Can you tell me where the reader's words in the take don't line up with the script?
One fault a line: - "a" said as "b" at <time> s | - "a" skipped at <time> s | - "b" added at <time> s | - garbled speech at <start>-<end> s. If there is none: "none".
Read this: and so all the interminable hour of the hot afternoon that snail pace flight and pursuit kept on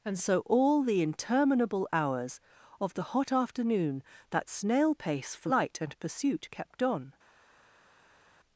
- "hour" said as "hours" at 1.9 s